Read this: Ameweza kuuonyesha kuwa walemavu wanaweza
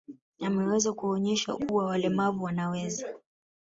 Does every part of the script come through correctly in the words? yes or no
yes